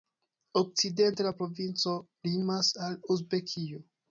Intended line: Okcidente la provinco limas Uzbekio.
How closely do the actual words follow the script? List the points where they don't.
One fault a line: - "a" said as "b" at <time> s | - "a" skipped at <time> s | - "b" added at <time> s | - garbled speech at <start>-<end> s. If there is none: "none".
- "al" added at 2.9 s